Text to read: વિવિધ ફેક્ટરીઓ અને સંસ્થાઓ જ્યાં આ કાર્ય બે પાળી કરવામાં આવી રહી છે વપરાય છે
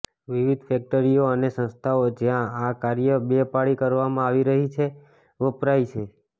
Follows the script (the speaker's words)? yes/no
yes